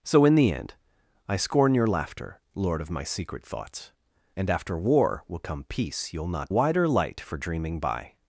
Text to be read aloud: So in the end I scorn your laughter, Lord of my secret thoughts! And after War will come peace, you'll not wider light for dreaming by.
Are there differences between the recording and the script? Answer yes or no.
no